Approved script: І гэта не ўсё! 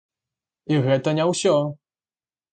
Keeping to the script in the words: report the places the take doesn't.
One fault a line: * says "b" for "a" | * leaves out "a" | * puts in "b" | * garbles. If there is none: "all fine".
all fine